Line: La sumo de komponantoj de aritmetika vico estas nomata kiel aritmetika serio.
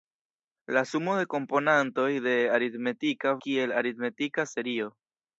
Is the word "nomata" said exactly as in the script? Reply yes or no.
no